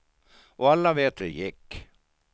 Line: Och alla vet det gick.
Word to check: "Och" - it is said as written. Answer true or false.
true